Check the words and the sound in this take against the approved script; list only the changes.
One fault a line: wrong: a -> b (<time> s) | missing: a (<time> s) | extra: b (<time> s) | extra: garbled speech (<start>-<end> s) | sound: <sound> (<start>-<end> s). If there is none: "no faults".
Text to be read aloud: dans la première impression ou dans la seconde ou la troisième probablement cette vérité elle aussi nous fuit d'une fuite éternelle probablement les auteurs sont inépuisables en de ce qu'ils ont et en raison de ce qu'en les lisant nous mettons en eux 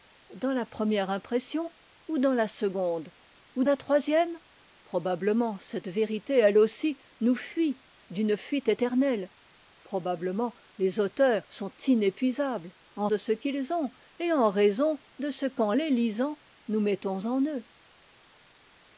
no faults